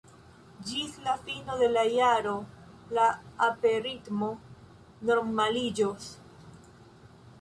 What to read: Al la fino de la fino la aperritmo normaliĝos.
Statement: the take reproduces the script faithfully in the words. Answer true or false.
false